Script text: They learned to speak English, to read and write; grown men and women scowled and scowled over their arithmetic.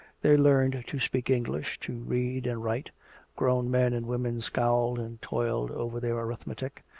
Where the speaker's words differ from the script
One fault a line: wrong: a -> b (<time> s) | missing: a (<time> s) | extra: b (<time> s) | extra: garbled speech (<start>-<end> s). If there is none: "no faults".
wrong: scowled -> toiled (5.2 s)